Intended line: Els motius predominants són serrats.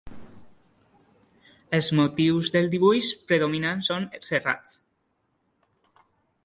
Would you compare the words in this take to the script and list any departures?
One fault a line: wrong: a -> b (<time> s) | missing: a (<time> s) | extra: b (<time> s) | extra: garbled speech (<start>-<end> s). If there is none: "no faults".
extra: del dibuix (2.6 s)